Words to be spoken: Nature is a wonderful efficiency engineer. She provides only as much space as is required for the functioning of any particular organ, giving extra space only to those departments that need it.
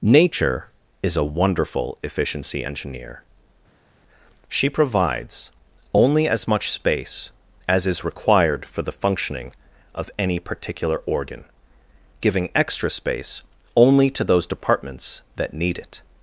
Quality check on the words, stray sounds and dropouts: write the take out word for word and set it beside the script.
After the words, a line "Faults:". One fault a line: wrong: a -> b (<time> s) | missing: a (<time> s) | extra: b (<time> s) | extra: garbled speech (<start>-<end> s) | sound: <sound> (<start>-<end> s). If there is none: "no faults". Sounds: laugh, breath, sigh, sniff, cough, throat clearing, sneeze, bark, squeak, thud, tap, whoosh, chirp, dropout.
Nature is a wonderful efficiency engineer. She provides only as much space as is required for the functioning of any particular organ, giving extra space only to those departments that need it.
Faults:
no faults